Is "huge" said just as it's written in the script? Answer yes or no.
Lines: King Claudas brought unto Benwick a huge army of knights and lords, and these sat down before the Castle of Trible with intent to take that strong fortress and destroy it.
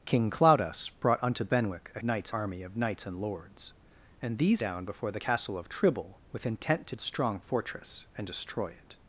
no